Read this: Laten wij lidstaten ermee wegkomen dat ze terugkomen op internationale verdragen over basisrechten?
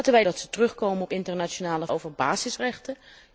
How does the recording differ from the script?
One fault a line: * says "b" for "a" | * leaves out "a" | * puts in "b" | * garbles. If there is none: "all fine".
* leaves out "lidstaten ermee wegkomen"
* leaves out "verdragen"